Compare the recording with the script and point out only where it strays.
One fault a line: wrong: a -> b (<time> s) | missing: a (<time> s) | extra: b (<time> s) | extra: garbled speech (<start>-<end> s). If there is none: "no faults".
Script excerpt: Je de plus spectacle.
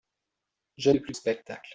no faults